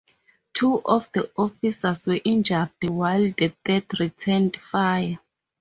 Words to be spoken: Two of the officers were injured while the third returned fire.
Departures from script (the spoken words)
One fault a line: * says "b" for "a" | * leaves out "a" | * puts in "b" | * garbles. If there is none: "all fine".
all fine